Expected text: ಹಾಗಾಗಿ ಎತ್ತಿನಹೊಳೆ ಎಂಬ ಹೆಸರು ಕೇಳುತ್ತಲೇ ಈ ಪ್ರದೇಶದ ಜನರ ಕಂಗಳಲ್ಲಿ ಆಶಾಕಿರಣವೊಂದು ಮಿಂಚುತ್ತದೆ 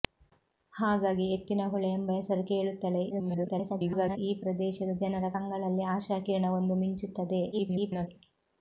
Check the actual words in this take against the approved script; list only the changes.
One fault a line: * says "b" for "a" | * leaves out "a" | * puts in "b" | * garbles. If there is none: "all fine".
* garbles
* garbles